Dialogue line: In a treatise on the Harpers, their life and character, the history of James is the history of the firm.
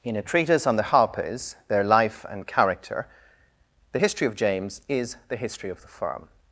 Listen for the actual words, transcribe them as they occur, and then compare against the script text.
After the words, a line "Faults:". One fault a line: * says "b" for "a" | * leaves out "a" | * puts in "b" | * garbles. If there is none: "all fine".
In a treatise on the Harpers, their life and character, the history of James is the history of the firm.
Faults:
all fine